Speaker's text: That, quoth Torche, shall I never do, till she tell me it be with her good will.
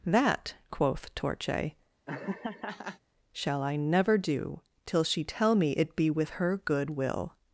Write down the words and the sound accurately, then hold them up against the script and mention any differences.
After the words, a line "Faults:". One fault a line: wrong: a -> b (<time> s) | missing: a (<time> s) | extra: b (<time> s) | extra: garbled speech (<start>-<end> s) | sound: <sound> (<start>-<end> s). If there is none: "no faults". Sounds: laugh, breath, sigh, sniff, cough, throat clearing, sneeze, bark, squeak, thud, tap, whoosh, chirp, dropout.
That, quoth Torche, shall I never do, till she tell me it be with her good will.
Faults:
sound: laugh (2.1-3.0 s)